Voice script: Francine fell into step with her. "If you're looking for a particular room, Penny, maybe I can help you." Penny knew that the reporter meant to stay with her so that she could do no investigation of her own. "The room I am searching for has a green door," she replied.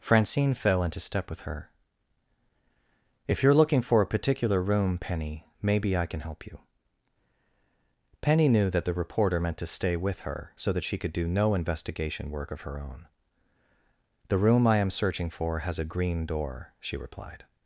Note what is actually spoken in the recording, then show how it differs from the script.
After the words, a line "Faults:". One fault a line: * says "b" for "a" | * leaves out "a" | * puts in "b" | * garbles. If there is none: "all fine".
Francine fell into step with her. "If you're looking for a particular room, Penny, maybe I can help you." Penny knew that the reporter meant to stay with her so that she could do no investigation work of her own. "The room I am searching for has a green door," she replied.
Faults:
* puts in "work"